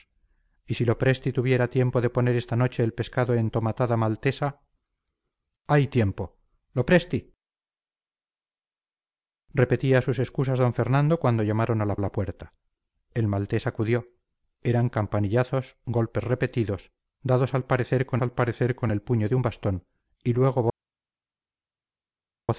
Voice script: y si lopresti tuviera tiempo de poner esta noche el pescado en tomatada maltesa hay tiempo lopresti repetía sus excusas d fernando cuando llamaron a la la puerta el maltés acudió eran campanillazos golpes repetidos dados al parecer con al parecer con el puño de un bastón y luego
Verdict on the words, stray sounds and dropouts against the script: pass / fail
pass